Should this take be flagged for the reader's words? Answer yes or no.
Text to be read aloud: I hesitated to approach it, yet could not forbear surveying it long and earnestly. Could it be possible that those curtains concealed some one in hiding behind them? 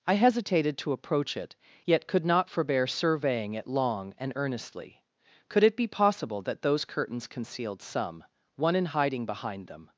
no